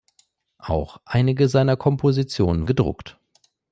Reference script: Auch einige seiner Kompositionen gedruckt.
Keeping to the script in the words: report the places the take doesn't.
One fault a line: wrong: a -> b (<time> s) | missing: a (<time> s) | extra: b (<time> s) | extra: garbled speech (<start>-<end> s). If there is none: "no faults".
no faults